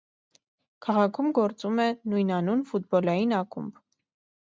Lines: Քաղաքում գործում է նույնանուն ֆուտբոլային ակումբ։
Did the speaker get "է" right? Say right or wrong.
right